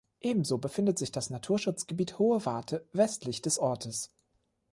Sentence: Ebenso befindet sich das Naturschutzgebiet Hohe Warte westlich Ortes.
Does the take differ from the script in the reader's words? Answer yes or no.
yes